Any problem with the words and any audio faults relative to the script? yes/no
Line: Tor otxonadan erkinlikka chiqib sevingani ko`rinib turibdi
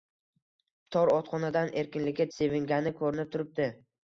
yes